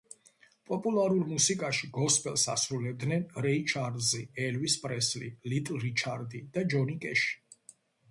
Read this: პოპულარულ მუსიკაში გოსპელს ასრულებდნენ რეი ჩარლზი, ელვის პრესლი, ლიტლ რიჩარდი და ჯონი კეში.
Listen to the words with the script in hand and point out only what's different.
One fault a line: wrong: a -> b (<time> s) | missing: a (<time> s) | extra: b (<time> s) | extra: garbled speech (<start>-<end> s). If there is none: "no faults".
no faults